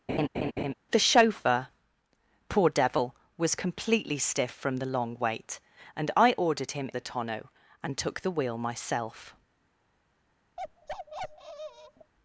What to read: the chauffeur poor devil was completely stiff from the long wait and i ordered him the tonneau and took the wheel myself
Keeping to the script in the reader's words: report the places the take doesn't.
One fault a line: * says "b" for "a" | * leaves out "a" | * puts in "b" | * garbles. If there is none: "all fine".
all fine